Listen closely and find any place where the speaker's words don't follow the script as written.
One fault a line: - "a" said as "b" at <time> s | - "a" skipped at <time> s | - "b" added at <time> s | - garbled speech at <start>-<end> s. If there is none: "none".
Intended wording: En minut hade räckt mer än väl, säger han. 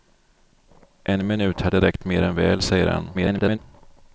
- garbled speech at 3.1-3.6 s